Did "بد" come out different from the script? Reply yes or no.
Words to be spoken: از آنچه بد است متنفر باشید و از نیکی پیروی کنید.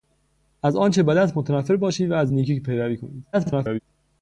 no